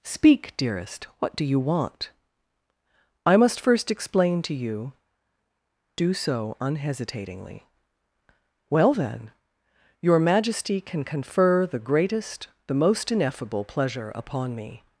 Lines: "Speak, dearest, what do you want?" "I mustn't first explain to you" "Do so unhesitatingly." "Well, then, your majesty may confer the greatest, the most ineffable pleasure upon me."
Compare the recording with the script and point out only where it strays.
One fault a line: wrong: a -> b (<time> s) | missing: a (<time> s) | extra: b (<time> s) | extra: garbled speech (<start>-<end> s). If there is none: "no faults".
wrong: mustn't -> must (3.4 s)
wrong: may -> can (10.8 s)